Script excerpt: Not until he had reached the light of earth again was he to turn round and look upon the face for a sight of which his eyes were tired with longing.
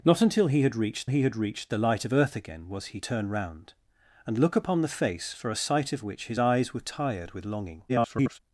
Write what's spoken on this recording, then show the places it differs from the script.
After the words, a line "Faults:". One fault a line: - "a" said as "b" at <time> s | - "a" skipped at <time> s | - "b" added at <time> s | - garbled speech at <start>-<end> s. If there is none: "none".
Not until he had reached he had reached the light of earth again was he turn round and look upon the face for a sight of which his eyes were tired with longing. [garbled]
Faults:
- "he had reached" added at 1.1 s
- "to" skipped at 3.0 s
- garbled speech at 7.9-8.4 s